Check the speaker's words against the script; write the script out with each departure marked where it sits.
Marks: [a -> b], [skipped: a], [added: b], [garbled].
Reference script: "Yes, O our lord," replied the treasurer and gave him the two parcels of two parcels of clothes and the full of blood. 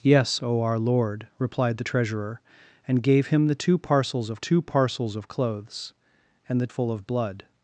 "Yes, O our lord," replied the treasurer and gave him the two parcels of two parcels of clothes and the full of blood.